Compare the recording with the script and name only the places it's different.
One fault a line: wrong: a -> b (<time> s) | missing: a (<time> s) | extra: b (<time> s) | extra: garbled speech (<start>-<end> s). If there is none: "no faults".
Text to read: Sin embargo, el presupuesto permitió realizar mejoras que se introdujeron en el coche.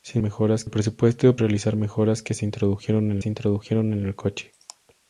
wrong: embargo -> mejoras (0.2 s)
missing: permitió (1.4 s)
extra: se introdujeron en (3.2 s)